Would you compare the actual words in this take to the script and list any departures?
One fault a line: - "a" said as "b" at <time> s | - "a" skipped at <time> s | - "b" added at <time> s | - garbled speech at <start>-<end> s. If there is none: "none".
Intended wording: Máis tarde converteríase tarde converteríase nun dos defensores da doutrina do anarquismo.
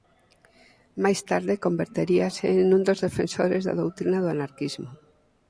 - "tarde converteríase" skipped at 2.5 s